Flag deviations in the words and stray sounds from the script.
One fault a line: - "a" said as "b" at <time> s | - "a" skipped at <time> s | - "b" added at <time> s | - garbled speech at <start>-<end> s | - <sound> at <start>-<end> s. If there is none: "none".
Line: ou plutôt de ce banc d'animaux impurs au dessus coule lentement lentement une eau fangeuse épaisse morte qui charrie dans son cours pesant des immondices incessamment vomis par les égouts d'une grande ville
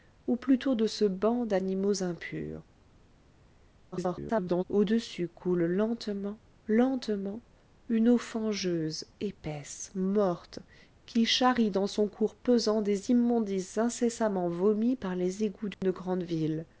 - garbled speech at 3.9-4.6 s
- dropout at 15.7-15.8 s